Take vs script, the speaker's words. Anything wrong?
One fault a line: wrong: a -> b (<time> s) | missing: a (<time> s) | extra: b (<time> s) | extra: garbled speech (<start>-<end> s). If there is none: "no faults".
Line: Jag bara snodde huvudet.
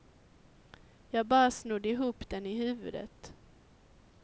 extra: ihop den i (1.9 s)